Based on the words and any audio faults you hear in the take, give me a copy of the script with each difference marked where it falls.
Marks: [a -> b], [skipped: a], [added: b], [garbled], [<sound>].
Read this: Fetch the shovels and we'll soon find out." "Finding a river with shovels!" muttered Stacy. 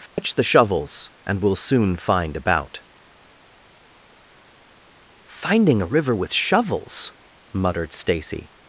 Fetch [dropout] the shovels and we'll soon find [out." -> about] "Finding a river with shovels!" muttered Stacy.